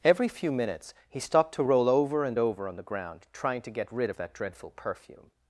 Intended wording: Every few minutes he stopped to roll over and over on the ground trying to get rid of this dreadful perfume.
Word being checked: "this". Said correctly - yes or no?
no